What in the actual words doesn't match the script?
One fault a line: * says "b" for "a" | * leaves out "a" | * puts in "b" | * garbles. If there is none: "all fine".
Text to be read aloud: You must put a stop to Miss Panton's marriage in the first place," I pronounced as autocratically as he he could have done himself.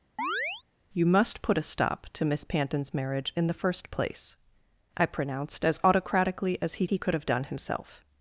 all fine